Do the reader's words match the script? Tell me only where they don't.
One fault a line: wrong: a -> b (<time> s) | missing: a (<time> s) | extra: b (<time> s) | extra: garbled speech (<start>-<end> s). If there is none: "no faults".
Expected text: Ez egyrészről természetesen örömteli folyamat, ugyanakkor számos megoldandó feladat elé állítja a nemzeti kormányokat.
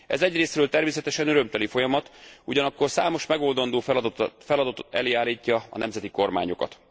no faults